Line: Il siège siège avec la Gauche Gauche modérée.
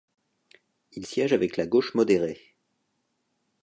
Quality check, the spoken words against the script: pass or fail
fail